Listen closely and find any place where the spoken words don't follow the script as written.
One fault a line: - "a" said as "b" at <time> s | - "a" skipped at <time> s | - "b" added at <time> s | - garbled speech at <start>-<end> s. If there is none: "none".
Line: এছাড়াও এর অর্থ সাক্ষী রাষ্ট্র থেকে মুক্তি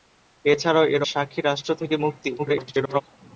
- "অর্থ" skipped at 1.0 s
- garbled speech at 2.4-3.0 s